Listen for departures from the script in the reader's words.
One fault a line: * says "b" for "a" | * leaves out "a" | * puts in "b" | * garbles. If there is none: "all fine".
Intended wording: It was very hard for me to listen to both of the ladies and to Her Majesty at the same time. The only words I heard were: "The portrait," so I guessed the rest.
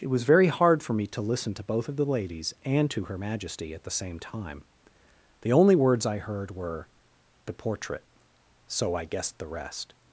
all fine